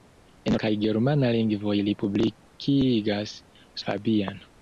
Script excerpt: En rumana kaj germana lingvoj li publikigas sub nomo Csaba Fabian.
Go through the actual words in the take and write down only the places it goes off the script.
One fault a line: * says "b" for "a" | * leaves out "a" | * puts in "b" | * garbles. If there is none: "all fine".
* leaves out "rumana"
* leaves out "sub nomo Csaba"